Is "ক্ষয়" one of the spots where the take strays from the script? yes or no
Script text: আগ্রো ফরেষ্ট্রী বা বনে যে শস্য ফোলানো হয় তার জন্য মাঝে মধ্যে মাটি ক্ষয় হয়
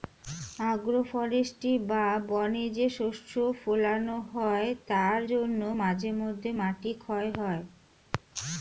no